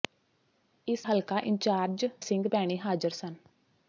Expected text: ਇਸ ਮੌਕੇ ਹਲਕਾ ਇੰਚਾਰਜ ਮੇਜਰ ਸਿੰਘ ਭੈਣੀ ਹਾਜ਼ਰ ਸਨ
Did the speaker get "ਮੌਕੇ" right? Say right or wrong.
wrong